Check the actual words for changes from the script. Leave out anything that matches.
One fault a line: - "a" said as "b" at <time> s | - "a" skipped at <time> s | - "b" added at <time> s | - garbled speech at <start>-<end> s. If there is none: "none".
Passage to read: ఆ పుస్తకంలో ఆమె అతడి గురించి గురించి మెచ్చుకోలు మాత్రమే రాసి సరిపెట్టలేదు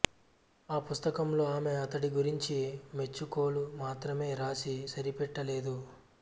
- "గురించి" skipped at 2.6 s